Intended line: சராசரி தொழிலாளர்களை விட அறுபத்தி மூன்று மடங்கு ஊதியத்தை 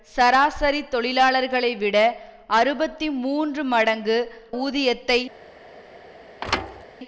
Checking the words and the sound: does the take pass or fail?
fail